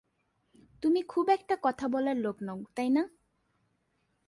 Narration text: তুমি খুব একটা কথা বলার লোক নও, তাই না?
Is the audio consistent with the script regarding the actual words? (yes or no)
yes